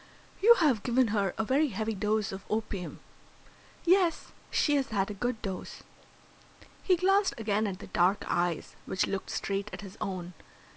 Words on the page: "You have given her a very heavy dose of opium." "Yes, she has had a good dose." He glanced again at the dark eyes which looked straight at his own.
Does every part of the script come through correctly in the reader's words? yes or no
yes